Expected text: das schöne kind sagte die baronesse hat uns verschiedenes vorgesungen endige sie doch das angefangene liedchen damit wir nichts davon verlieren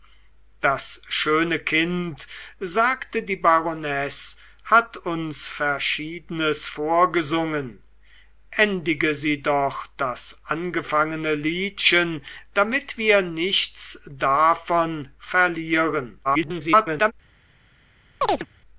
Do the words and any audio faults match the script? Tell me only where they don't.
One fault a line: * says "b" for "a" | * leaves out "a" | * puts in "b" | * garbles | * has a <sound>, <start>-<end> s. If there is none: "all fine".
* garbles
* has a chirp, 18.2-18.5 s